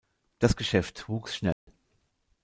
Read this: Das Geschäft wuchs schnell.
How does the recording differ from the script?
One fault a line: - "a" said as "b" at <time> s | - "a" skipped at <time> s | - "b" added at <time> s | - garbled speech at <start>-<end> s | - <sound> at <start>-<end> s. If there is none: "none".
- dropout at 1.5-1.7 s